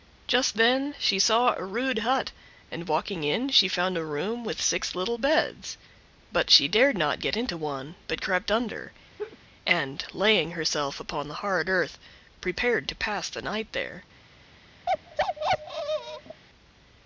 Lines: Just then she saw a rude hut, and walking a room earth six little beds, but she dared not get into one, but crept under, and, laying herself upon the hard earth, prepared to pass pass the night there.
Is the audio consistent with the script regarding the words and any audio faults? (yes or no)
no